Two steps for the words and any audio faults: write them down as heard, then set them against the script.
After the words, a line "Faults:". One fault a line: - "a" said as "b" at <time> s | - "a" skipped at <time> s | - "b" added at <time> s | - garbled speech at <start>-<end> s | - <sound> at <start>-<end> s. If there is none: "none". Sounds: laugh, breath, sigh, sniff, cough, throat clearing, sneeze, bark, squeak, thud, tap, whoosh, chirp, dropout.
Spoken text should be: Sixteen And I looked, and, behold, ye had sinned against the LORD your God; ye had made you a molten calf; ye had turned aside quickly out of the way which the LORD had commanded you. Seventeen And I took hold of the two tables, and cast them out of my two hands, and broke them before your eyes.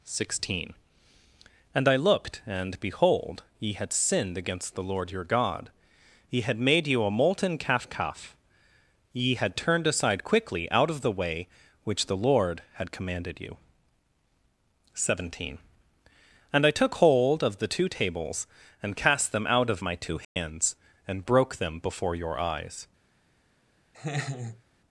Sixteen And I looked, and, behold, ye had sinned against the LORD your God; ye had made you a molten calf calf; ye had turned aside quickly out of the way which the LORD had commanded you. Seventeen And I took hold of the two tables, and cast them out of my two hands, and broke them before your eyes.
Faults:
- "calf" added at 7.9 s
- dropout at 20.2-20.4 s
- laugh at 23.9-24.6 s